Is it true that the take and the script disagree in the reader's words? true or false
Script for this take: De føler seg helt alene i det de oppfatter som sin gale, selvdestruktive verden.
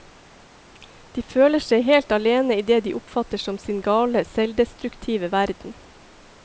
false